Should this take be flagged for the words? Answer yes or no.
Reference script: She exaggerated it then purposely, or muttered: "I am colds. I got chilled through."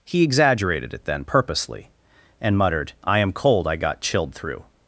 yes